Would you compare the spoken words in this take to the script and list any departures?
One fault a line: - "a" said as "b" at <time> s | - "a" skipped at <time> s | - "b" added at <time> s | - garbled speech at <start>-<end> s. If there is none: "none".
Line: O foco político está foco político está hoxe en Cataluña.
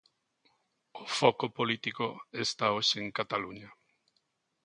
- "foco político está" skipped at 2.6 s